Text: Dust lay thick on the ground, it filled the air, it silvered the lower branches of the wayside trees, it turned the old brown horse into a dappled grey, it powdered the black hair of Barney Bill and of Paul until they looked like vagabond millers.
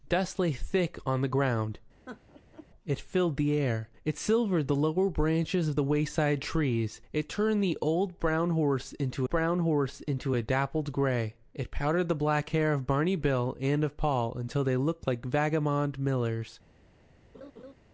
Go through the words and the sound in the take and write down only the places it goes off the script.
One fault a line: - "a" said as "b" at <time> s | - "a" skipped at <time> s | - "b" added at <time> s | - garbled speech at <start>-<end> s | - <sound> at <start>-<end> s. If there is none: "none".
- laugh at 2.1-2.7 s
- "brown horse into" added at 9.3 s
- laugh at 17.3-17.7 s